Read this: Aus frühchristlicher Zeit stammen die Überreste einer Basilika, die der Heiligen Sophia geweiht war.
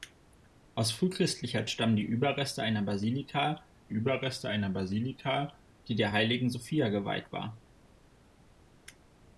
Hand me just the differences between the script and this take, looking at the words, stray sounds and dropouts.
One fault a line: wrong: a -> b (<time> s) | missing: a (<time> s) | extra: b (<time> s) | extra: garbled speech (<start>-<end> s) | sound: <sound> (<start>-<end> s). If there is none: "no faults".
missing: Zeit (1.7 s)
extra: Überreste einer Basilika (3.9 s)